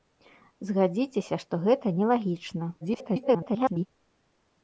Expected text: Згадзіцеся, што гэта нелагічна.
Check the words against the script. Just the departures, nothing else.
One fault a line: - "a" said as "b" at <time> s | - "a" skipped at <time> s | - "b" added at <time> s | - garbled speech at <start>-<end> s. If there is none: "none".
- garbled speech at 2.8-3.9 s